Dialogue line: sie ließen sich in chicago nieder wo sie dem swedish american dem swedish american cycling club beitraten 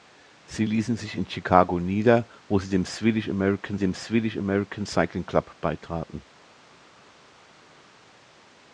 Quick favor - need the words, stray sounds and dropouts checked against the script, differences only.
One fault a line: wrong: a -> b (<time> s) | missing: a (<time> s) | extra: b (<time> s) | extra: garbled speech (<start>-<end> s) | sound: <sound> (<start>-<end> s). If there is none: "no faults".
no faults